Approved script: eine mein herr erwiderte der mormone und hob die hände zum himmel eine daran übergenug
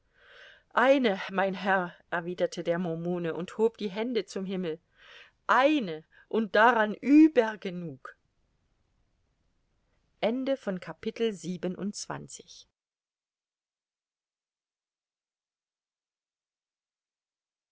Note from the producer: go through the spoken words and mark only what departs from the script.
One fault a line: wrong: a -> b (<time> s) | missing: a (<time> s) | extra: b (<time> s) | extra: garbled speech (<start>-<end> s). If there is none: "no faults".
extra: und (6.3 s)